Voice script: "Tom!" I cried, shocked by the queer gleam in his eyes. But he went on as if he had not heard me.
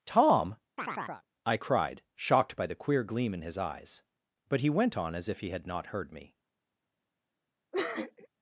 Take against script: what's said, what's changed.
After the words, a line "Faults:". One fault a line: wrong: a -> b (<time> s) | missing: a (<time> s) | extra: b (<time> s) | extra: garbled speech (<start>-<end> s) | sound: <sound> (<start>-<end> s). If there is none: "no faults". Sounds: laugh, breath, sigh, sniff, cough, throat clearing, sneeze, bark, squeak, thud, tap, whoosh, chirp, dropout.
"Tom!" I cried, shocked by the queer gleam in his eyes. But he went on as if he had not heard me.
Faults:
sound: chirp (0.8-1.3 s)
sound: sniff (7.7-8.3 s)